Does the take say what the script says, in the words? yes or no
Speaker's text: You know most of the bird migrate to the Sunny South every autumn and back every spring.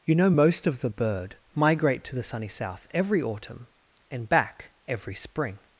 yes